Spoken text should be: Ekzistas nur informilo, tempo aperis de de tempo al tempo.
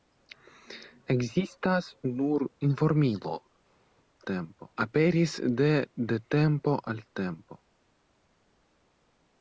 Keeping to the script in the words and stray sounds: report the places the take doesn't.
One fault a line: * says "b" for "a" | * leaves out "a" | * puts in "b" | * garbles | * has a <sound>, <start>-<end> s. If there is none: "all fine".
all fine